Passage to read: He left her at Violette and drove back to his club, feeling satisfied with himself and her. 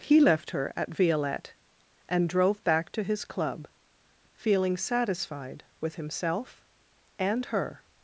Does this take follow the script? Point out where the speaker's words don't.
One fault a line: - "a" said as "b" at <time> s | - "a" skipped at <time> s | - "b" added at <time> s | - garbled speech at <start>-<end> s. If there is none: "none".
none